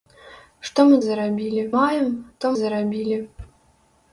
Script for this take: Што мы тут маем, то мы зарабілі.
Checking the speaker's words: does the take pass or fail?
fail